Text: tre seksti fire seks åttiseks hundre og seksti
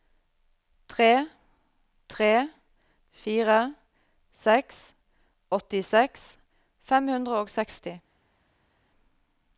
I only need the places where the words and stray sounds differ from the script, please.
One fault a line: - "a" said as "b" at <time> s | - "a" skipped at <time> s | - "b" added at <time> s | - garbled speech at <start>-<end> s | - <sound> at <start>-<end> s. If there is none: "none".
- "seksti" said as "tre" at 2.1 s
- "fem" added at 6.9 s